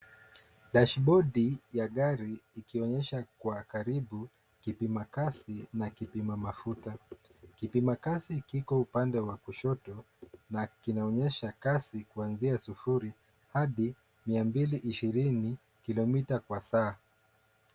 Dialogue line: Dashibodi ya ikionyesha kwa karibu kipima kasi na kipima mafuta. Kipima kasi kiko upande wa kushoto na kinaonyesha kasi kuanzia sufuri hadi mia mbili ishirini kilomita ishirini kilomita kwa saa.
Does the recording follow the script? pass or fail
fail